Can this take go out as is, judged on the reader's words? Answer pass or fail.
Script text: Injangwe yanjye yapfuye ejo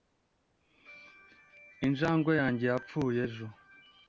pass